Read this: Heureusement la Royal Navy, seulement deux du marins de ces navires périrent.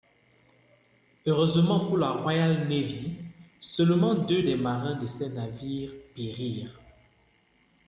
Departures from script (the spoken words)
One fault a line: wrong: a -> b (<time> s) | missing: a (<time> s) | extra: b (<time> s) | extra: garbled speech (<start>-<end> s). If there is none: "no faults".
extra: pour (1.9 s)
wrong: du -> des (4.4 s)